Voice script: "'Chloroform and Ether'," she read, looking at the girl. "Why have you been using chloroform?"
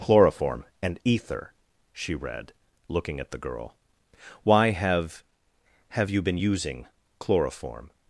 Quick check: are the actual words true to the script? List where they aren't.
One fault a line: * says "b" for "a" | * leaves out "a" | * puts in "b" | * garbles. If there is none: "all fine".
* puts in "have"